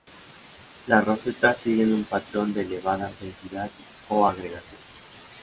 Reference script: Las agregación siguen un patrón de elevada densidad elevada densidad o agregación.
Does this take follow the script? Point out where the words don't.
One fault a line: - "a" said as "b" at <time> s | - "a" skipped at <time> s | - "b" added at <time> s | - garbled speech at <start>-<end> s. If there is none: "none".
- "agregación" said as "rosetas" at 1.1 s
- "elevada densidad" skipped at 3.7 s